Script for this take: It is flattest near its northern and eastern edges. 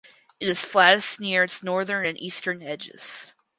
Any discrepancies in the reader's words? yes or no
no